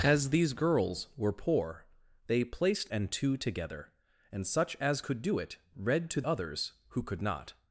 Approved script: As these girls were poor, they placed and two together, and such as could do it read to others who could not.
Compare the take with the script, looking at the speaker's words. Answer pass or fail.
pass